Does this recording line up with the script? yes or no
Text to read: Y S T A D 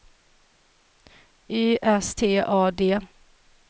yes